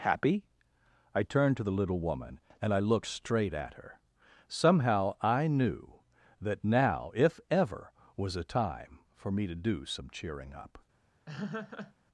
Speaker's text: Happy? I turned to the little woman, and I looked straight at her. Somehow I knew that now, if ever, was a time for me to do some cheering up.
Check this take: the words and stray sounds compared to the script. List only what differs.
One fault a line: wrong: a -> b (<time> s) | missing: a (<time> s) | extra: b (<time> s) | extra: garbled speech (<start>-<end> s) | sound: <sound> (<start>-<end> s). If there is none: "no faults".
sound: laugh (11.3-11.9 s)